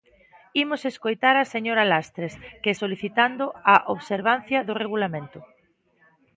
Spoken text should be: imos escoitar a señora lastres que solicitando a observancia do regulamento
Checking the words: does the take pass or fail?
pass